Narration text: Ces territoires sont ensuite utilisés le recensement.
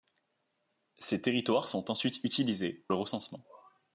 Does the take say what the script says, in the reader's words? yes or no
yes